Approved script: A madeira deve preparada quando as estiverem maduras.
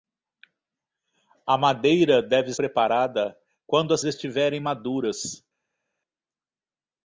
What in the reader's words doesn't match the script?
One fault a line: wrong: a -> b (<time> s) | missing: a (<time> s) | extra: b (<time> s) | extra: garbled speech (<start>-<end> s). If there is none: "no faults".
no faults